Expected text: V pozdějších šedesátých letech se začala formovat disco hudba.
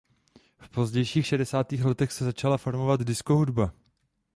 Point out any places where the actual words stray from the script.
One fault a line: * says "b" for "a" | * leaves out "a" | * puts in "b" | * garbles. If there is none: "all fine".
all fine